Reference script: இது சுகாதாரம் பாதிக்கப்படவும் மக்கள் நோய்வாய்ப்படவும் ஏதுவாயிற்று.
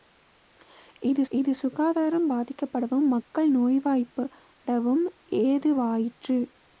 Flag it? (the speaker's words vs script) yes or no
yes